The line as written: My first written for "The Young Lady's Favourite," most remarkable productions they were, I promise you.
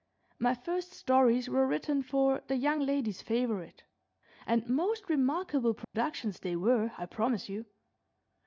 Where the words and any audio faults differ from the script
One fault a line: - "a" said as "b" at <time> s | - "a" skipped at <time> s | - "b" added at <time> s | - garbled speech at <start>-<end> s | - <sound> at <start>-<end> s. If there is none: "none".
- "stories were" added at 0.9 s
- "and" added at 4.5 s
- dropout at 5.8-5.9 s